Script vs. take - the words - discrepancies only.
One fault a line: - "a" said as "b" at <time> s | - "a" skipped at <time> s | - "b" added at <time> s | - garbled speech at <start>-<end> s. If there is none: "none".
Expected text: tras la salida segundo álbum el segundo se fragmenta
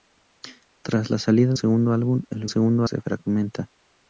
none